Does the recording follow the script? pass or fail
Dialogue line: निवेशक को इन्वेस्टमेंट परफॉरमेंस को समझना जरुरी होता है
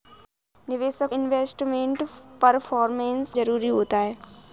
fail